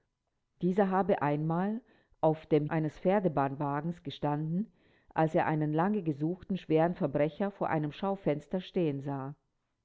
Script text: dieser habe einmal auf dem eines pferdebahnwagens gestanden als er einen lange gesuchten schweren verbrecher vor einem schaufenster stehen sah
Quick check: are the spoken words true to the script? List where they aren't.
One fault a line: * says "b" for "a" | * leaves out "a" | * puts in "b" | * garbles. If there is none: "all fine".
all fine